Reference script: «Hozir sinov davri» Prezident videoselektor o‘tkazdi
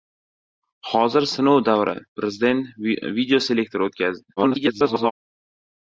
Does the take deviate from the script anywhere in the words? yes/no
yes